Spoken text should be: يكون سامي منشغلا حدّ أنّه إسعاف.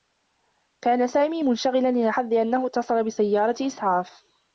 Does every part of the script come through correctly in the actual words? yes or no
no